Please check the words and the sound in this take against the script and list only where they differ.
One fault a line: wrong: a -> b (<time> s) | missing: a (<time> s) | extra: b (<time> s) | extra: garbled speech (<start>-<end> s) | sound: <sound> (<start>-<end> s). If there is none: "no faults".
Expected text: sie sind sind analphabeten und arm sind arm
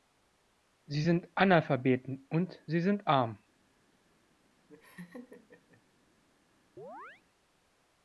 missing: sind (1.3 s)
wrong: arm -> sie (2.7 s)
sound: laugh (4.7-5.8 s)
sound: chirp (6.8-7.2 s)